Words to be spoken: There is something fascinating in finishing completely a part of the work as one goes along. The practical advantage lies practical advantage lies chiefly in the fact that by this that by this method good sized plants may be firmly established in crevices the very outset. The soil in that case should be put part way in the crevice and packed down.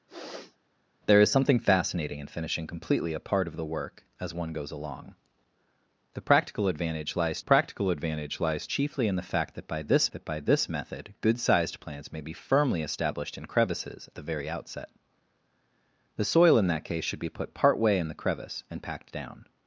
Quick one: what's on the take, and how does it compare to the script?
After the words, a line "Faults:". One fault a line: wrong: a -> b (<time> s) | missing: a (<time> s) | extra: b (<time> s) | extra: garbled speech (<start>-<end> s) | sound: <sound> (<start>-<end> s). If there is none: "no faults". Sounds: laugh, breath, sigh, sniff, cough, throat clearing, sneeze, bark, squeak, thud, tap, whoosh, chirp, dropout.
There is something fascinating in finishing completely a part of the work as one goes along. The practical advantage lies practical advantage lies chiefly in the fact that by this that by this method good sized plants may be firmly established in crevices the very outset. The soil in that case should be put part way in the crevice and packed down.
Faults:
sound: sniff (0.1-0.6 s)